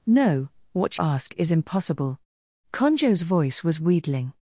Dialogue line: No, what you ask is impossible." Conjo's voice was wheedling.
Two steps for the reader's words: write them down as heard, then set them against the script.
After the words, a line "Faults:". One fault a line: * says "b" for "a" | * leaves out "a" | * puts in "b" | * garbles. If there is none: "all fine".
No, what ask is impossible." Conjo's voice was wheedling.
Faults:
* leaves out "you"